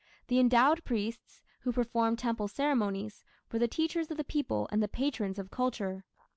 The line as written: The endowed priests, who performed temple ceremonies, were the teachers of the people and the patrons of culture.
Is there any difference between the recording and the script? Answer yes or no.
no